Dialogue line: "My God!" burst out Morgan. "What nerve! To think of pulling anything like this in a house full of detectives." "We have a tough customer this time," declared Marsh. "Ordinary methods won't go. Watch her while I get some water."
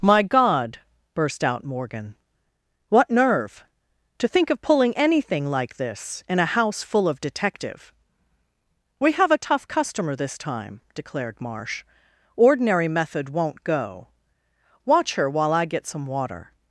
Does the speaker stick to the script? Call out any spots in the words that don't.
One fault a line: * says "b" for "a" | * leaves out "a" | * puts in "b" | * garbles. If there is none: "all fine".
* says "detective" for "detectives"
* says "method" for "methods"